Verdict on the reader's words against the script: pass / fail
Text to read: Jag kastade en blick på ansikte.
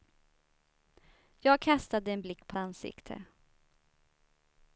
pass